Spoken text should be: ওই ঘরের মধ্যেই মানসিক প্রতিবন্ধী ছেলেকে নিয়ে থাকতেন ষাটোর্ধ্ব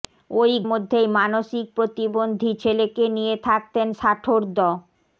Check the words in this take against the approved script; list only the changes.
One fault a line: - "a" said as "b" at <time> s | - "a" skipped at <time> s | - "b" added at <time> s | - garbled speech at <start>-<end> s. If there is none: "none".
- "ঘরের" skipped at 0.5 s